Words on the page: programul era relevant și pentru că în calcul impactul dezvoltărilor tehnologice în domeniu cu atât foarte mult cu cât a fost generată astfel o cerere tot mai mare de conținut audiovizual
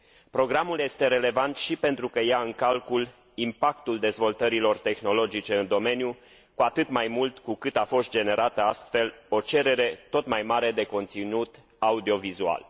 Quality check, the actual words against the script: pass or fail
fail